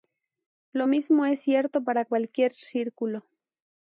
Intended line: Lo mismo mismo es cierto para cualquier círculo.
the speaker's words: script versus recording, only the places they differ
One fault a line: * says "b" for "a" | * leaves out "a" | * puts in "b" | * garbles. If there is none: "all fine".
* leaves out "mismo"